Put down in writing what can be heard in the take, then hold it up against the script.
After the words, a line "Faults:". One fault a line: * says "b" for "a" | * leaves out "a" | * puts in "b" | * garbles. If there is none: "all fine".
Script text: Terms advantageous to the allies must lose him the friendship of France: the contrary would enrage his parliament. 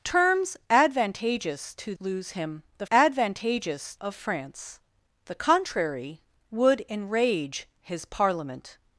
Terms advantageous to lose him the advantageous of France: the contrary would enrage his parliament.
Faults:
* leaves out "the allies must"
* says "advantageous" for "friendship"